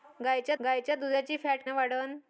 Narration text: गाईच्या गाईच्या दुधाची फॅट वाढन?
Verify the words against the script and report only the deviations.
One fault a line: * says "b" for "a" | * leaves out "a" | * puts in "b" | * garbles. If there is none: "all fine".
all fine